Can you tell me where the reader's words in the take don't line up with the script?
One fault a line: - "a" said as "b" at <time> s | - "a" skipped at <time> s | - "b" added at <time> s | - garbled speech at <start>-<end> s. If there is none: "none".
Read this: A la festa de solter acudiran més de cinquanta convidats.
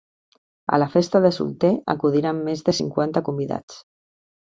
none